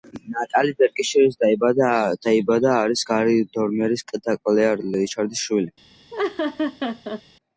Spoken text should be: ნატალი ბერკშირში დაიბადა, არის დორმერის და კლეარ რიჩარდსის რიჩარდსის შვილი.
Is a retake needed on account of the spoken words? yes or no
yes